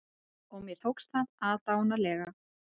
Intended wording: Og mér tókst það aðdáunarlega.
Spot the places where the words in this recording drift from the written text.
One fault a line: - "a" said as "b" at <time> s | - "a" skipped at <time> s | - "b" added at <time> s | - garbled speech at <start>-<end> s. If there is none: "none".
none